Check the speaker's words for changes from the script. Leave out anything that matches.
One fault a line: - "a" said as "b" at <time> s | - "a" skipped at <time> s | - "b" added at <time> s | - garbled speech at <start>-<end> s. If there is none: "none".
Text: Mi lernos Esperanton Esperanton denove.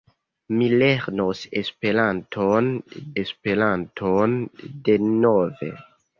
none